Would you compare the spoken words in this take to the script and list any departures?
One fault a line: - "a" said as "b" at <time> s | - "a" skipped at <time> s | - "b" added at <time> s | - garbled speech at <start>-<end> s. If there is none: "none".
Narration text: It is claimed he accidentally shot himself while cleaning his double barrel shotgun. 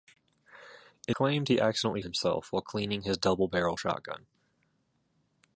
- "is" skipped at 1.1 s
- "shot" skipped at 2.0 s